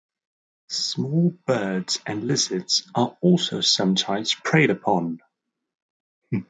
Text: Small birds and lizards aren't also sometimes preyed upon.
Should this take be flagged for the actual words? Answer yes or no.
yes